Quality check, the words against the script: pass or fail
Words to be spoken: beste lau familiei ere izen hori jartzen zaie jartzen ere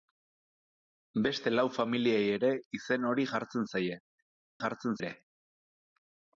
pass